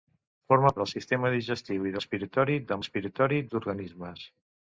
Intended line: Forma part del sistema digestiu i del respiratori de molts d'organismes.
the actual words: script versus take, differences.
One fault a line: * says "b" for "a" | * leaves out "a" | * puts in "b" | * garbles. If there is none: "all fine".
* leaves out "part"
* leaves out "del"
* says "respiratori" for "molts"